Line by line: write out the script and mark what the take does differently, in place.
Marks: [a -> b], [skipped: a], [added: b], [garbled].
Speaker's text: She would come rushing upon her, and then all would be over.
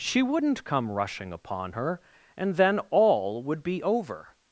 She [would -> wouldn't] come rushing upon her, and then all would be over.